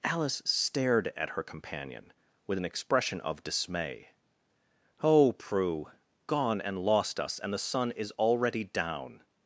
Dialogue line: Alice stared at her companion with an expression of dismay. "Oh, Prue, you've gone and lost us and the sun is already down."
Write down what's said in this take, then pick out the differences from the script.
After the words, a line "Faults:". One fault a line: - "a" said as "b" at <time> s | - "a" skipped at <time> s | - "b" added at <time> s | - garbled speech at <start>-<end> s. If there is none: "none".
Alice stared at her companion with an expression of dismay. "Oh, Prue, gone and lost us and the sun is already down."
Faults:
- "you've" skipped at 5.9 s